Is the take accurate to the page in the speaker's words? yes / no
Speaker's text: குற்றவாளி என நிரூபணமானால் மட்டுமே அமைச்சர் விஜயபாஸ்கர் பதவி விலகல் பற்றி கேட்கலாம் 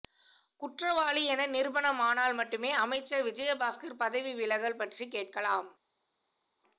yes